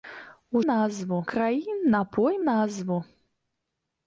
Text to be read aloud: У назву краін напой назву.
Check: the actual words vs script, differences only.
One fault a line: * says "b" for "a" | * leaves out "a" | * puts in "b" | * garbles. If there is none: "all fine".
all fine